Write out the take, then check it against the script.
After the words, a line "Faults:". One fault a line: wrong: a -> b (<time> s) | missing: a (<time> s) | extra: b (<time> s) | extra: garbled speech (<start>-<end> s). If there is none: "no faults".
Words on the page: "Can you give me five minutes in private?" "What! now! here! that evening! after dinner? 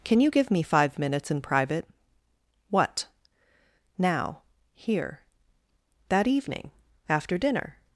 "Can you give me five minutes in private?" "What! now! here! that evening! after dinner?
Faults:
no faults